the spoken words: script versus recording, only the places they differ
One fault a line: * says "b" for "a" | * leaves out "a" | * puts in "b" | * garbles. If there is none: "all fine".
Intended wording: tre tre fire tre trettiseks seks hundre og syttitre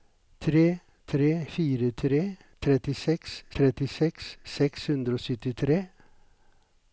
* puts in "trettiseks"